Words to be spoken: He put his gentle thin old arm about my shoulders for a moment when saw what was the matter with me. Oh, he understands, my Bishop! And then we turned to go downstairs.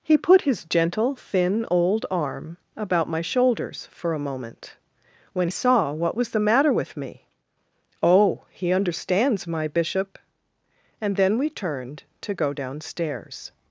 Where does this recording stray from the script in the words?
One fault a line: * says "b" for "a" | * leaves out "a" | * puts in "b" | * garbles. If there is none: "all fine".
all fine